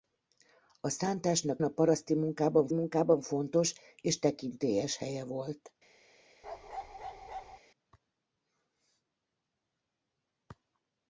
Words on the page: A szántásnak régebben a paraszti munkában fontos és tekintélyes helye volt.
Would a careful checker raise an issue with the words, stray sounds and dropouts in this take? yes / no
yes